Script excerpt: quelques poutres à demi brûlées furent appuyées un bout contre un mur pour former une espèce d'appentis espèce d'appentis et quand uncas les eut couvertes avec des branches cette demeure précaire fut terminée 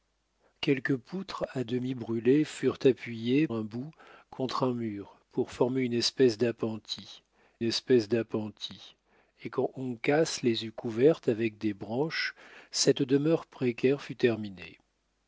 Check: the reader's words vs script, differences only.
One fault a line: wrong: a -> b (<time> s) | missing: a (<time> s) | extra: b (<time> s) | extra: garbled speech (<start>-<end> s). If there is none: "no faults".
no faults